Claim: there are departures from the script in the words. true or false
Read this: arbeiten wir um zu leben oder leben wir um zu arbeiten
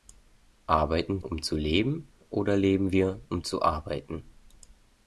true